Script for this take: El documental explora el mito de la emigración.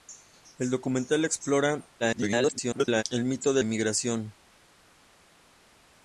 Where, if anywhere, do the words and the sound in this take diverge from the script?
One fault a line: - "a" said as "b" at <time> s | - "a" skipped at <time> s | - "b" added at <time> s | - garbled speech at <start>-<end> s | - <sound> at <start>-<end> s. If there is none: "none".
- garbled speech at 2.0-3.0 s
- "la" skipped at 3.6 s